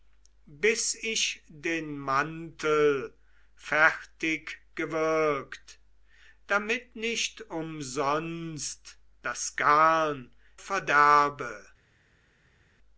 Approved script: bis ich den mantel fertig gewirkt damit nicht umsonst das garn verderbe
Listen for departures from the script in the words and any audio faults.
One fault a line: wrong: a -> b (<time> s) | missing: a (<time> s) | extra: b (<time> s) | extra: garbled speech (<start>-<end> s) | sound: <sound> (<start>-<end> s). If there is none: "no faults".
no faults